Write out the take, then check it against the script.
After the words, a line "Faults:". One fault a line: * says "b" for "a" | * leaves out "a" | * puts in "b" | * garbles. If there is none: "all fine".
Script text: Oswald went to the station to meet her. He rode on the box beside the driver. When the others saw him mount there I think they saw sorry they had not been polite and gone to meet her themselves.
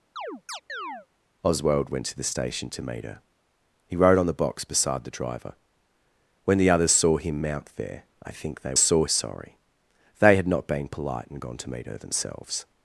Oswald went to the station to meet her. He rode on the box beside the driver. When the others saw him mount there I think they saw sorry they had not been polite and gone to meet her themselves.
Faults:
all fine